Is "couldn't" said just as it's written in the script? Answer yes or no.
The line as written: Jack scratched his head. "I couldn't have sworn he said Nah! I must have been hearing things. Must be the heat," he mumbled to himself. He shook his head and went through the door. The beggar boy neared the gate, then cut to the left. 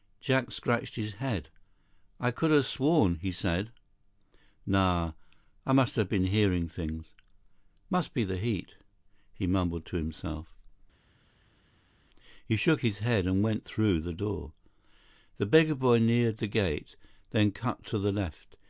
no